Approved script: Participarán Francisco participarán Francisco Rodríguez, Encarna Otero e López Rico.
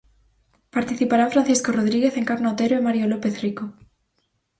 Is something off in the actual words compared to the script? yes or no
yes